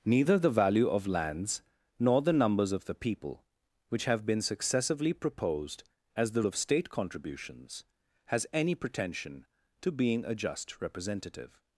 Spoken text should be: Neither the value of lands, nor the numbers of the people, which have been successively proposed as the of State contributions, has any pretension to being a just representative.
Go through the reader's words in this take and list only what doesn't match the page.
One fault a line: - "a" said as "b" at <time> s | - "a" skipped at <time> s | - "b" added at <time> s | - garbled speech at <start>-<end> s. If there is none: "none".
none